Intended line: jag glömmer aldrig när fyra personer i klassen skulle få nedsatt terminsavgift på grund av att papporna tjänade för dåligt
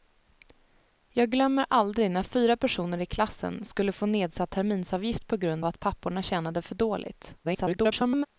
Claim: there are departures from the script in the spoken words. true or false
true